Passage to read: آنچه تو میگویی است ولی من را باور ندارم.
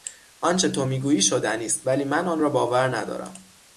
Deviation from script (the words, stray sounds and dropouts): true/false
true